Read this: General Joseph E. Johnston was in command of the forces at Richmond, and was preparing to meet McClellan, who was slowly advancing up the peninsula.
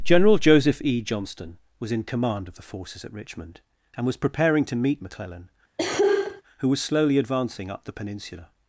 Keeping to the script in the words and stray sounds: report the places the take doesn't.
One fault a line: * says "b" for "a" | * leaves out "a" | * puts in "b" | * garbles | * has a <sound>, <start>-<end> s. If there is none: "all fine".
* has a cough, 5.8-6.4 s